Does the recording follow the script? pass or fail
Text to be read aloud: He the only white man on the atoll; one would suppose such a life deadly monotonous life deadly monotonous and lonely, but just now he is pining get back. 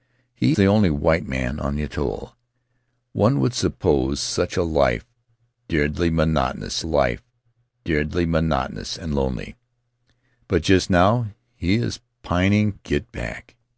pass